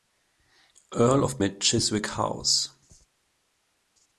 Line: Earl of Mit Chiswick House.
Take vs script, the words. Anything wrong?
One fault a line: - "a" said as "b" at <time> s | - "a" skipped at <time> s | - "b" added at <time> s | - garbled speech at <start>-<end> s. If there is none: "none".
none